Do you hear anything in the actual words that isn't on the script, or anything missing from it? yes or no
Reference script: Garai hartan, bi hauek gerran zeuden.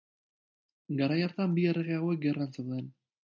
yes